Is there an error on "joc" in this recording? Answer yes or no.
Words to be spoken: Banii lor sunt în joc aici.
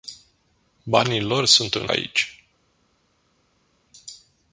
yes